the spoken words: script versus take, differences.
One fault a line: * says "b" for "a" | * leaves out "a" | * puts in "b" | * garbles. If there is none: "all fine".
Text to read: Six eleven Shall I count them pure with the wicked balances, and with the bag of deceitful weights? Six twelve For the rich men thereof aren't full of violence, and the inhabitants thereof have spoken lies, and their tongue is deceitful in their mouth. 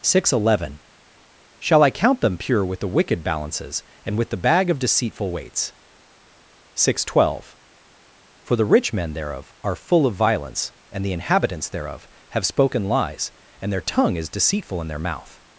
* says "are" for "aren't"